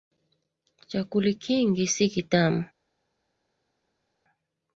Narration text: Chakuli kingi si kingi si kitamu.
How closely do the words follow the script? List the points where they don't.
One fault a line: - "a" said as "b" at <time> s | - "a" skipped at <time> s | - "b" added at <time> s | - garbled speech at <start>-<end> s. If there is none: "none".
- "kingi si" skipped at 2.1 s